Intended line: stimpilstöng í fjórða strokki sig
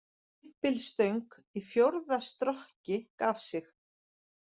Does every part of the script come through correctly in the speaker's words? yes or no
no